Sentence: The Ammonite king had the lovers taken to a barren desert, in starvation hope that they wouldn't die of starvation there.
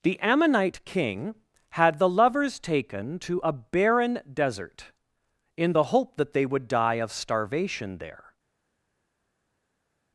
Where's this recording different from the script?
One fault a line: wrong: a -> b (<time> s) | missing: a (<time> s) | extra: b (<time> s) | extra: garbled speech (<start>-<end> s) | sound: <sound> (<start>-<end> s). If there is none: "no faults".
wrong: starvation -> the (5.7 s)
wrong: wouldn't -> would (6.5 s)